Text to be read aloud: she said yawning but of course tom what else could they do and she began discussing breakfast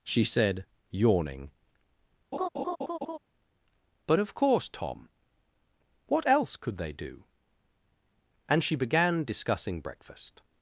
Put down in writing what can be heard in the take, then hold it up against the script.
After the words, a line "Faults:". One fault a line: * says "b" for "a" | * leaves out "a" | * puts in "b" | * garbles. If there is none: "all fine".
she said yawning but of course tom what else could they do and she began discussing breakfast
Faults:
all fine